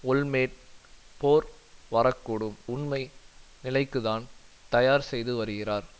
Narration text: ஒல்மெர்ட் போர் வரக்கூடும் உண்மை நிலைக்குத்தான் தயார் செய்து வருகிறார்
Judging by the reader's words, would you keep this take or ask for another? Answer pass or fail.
pass